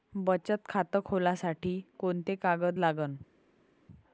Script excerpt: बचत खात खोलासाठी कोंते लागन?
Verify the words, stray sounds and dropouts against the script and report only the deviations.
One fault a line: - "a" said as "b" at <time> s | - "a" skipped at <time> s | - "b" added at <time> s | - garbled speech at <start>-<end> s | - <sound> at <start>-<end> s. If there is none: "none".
- "कागद" added at 2.4 s